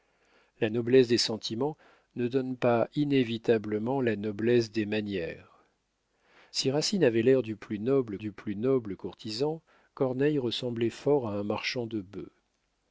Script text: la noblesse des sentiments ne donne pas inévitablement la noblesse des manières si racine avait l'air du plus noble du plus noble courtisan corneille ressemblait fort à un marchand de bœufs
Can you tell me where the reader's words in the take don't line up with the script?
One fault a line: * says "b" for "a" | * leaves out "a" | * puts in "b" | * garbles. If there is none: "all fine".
all fine